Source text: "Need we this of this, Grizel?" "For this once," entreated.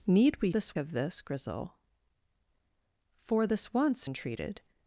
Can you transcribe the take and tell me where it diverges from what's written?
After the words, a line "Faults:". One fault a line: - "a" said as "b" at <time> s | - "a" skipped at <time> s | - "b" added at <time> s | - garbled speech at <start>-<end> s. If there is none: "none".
"Need we this of this, Grizel?" "For this once," entreated.
Faults:
none